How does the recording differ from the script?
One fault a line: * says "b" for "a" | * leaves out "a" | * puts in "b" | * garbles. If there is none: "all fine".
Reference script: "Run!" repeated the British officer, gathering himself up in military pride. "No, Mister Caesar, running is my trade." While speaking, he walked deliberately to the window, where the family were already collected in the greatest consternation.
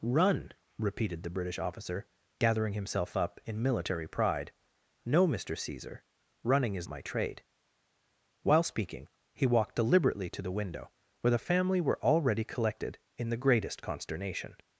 all fine